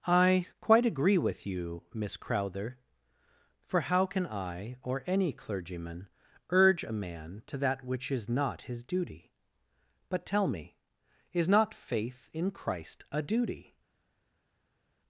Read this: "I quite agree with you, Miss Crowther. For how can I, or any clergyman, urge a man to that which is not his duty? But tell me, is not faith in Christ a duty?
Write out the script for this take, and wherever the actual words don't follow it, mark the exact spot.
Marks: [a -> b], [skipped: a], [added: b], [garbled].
"I quite agree with you, Miss Crowther. For how can I, or any clergyman, urge a man to that which is not his duty? But tell me, is not faith in Christ a duty?